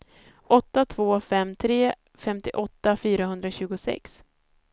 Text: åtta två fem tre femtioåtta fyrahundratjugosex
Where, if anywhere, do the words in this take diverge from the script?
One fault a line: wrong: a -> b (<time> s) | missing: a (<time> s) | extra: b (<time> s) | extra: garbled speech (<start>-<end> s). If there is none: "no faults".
no faults